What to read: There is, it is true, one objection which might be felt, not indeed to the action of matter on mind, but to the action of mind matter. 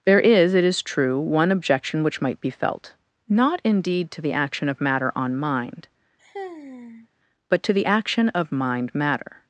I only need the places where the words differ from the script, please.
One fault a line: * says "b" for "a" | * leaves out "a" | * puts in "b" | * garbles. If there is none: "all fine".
all fine